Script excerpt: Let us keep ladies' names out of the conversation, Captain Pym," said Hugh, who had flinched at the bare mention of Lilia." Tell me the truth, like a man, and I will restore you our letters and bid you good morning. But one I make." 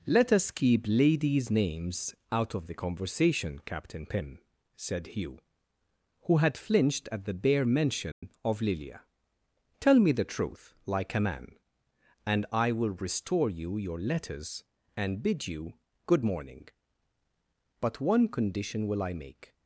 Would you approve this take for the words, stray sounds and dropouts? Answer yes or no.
no